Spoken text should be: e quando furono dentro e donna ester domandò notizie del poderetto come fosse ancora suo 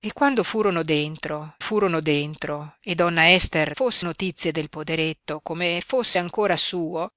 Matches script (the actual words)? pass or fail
fail